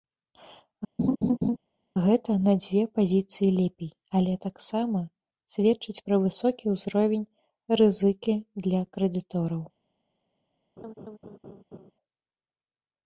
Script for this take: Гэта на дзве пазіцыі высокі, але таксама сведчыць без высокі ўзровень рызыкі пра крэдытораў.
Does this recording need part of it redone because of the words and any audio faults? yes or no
yes